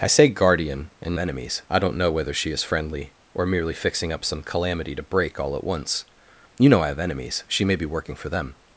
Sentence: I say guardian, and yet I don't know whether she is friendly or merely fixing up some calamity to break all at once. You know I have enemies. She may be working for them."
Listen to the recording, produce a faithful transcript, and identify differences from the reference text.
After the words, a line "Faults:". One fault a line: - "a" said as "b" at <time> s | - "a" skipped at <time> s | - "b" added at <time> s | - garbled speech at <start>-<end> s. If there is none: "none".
I say guardian, and enemies I don't know whether she is friendly or merely fixing up some calamity to break all at once. You know I have enemies. She may be working for them."
Faults:
- "yet" said as "enemies" at 1.2 s